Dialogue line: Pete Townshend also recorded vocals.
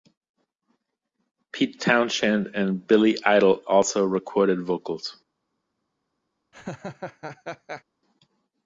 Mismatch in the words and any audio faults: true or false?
true